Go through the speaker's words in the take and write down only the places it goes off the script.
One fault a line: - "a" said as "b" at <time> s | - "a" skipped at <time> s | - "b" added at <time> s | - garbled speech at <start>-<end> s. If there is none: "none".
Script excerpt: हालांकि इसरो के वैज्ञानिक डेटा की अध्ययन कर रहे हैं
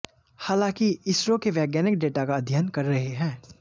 - "की" said as "का" at 2.2 s